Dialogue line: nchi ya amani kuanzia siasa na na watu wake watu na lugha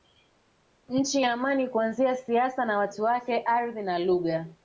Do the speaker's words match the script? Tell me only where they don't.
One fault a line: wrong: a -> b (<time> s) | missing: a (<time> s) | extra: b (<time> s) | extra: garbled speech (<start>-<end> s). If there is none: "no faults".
missing: na (2.8 s)
wrong: watu -> ardhi (3.4 s)